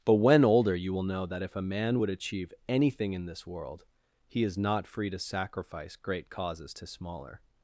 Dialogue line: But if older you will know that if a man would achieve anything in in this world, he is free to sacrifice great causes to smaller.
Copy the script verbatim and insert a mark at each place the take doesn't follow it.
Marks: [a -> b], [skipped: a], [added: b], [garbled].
But [if -> when] older you will know that if a man would achieve anything in [skipped: in] this world, he is [added: not] free to sacrifice great causes to smaller.